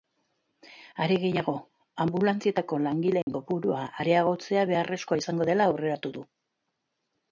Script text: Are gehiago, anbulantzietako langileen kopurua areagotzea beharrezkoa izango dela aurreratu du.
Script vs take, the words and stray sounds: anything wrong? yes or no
yes